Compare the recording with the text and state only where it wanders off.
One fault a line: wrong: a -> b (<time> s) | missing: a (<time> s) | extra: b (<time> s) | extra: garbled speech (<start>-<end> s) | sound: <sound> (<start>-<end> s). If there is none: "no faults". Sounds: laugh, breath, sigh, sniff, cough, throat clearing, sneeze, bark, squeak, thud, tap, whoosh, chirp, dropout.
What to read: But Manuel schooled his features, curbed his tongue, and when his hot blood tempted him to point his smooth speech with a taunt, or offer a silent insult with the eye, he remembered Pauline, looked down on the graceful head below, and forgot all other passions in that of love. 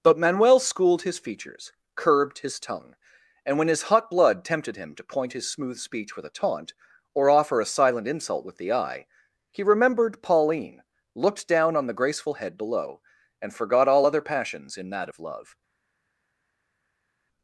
no faults